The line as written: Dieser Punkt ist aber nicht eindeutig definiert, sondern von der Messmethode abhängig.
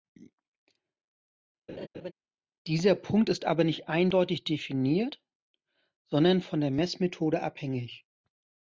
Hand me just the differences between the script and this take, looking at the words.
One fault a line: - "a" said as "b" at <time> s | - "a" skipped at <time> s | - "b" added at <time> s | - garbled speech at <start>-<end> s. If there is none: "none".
none